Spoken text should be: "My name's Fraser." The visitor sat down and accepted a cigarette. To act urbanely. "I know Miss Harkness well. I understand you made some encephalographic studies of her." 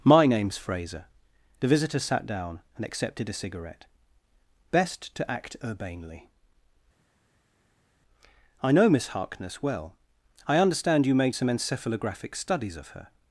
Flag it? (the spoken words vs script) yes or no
yes